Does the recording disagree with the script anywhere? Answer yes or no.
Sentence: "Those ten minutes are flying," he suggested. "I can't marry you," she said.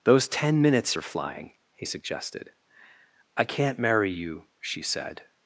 no